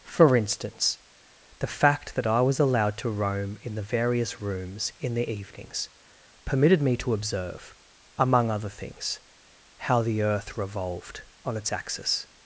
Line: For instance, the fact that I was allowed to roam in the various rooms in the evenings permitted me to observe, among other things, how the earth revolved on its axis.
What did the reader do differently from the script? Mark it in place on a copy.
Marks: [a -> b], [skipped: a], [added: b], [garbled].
For instance, the fact that I was allowed to roam in the various rooms in the evenings permitted me to observe, among other things, how the earth revolved on its axis.